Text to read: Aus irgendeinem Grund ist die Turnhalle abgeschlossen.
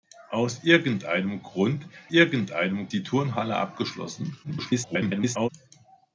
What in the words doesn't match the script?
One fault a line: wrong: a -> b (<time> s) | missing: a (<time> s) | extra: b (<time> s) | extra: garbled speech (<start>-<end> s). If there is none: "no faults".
wrong: ist -> irgendeinem (2.1 s)
extra: garbled speech (4.4-5.5 s)